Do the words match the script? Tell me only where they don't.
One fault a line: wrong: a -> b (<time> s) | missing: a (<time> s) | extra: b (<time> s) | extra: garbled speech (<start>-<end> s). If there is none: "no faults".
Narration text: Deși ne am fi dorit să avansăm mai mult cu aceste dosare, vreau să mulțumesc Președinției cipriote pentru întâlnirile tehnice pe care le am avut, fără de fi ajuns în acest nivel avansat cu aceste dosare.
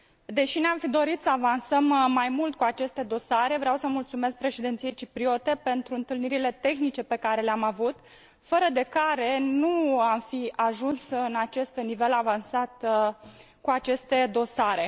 extra: care nu am (8.8 s)